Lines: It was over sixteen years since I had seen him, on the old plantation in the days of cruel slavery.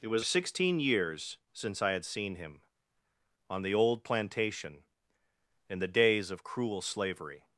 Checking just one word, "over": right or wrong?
wrong